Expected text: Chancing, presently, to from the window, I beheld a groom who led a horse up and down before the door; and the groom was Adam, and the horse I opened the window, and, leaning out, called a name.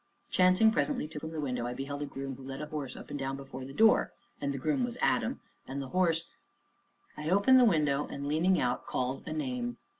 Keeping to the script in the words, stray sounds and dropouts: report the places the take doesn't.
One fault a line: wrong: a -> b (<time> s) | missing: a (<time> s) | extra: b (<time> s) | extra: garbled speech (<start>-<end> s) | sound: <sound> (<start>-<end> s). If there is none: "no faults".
no faults